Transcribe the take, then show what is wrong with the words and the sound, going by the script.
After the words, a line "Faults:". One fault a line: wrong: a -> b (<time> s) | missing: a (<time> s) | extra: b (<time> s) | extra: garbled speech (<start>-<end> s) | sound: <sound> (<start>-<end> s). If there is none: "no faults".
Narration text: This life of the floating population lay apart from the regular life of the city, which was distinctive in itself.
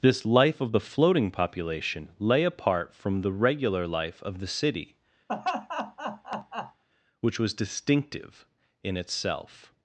This life of the floating population lay apart from the regular life of the city, which was distinctive in itself.
Faults:
sound: laugh (5.3-6.8 s)